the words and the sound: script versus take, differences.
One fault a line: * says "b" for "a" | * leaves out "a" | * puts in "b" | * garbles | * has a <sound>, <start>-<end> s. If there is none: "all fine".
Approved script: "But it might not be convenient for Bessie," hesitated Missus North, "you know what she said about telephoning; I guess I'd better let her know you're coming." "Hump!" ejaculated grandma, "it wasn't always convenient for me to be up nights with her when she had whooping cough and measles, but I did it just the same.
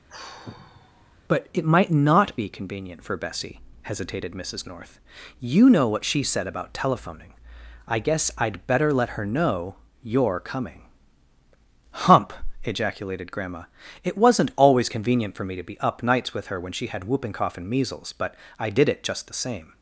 * has a sigh, 0.1-1.2 s